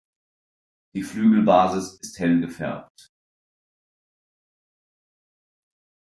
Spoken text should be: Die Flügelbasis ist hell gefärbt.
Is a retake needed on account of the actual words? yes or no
no